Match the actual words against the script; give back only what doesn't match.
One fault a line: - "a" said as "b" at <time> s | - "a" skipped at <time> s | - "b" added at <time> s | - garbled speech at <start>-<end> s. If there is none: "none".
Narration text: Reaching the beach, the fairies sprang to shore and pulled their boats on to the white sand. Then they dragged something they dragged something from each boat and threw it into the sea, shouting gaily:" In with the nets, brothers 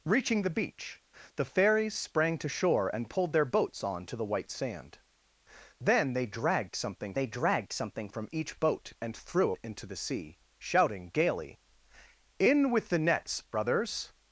none